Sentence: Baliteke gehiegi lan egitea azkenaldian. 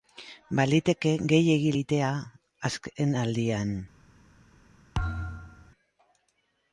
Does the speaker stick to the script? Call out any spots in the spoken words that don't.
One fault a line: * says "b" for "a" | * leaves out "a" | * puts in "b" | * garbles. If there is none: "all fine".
* leaves out "lan"